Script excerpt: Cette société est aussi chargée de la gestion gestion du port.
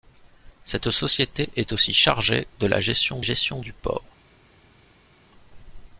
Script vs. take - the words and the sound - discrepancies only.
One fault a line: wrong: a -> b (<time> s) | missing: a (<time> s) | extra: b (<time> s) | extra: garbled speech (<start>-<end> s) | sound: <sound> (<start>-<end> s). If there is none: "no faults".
no faults